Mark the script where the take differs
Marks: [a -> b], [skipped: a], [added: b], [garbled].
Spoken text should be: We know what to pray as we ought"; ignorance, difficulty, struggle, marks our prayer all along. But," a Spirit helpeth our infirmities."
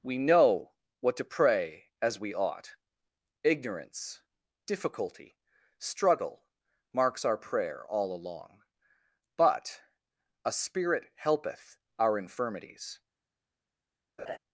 We know what to pray as we ought"; ignorance, difficulty, struggle, marks our prayer all along. But," a Spirit helpeth our infirmities."